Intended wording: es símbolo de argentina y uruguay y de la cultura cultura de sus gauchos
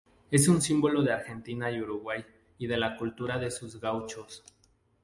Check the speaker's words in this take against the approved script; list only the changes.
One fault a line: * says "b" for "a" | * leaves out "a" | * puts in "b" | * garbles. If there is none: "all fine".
* puts in "un"
* leaves out "cultura"